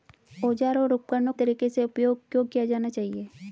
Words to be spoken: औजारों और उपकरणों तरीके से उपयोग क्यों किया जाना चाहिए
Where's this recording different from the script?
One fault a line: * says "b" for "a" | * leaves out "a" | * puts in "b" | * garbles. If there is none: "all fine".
all fine